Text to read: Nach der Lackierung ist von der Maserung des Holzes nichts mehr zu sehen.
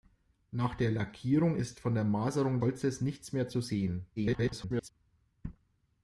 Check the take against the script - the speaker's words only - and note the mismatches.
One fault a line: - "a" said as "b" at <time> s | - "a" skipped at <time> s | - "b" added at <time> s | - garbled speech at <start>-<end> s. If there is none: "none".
- "des" skipped at 2.6 s
- garbled speech at 4.2-4.9 s